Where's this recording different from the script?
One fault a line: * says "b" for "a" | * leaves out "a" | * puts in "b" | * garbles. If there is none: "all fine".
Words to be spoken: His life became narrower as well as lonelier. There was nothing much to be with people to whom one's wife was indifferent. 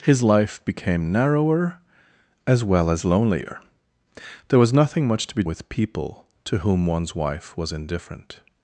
all fine